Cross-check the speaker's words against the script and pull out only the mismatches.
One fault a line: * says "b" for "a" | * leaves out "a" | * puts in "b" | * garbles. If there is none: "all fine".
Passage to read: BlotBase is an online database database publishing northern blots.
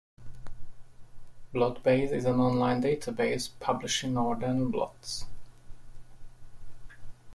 * leaves out "database"